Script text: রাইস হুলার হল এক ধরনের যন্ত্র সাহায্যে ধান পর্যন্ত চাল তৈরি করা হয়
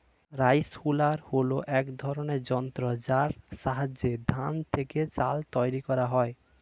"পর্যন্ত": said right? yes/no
no